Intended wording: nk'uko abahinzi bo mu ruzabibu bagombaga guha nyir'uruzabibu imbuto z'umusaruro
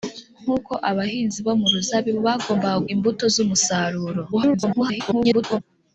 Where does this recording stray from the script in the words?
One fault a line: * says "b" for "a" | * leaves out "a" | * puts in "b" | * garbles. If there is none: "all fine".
* leaves out "guha nyir'uruzabibu"
* garbles